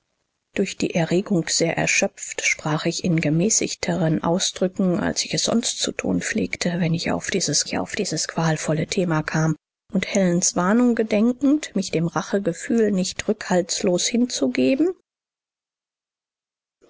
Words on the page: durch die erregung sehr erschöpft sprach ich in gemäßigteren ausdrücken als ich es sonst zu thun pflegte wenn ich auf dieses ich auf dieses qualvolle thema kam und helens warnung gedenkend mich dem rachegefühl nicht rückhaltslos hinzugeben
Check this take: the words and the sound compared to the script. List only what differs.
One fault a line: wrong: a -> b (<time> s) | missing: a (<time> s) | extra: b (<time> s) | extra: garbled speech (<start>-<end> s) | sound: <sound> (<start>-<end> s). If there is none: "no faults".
no faults